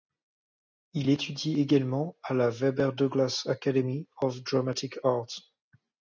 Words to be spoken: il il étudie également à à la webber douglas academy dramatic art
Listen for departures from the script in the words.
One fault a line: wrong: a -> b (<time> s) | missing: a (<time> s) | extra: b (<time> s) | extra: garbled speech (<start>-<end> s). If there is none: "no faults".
missing: il (1.1 s)
missing: à (2.3 s)
extra: of (4.2 s)